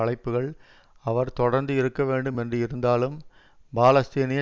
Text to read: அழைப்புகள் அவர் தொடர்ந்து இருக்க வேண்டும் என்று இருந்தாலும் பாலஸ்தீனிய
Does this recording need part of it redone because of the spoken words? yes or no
no